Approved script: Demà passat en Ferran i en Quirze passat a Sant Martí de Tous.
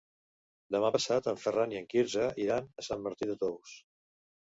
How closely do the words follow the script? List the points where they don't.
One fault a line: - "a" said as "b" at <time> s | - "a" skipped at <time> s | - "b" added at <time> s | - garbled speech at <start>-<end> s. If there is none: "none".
- "passat" said as "iran" at 2.5 s